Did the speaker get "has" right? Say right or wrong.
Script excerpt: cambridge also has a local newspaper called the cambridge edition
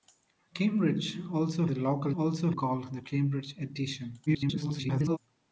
wrong